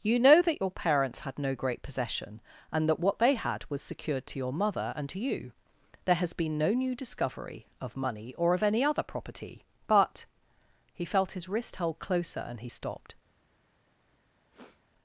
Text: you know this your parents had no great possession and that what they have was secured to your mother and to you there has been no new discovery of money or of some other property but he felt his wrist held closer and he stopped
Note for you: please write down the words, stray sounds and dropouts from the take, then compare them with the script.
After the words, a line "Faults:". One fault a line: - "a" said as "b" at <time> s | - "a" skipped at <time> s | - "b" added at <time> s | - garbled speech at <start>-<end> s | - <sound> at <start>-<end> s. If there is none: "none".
you know that your parents had no great possession and that what they had was secured to your mother and to you there has been no new discovery of money or of any other property but he felt his wrist held closer and he stopped
Faults:
- "this" said as "that" at 0.4 s
- "have" said as "had" at 3.4 s
- "some" said as "any" at 8.6 s
- sniff at 14.5-14.8 s